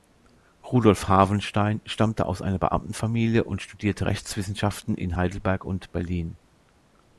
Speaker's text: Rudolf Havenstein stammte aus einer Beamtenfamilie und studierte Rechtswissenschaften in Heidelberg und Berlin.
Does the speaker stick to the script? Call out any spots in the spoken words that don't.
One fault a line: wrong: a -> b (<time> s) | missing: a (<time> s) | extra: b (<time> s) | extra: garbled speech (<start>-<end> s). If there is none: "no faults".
no faults